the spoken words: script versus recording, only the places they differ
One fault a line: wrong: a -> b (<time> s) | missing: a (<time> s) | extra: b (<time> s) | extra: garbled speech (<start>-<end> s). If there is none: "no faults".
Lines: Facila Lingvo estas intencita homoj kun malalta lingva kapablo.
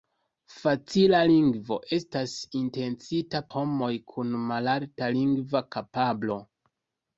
no faults